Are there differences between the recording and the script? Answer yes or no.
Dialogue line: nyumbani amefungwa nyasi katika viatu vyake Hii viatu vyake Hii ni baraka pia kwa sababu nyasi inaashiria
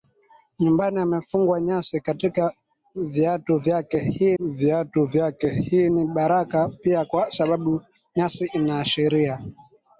no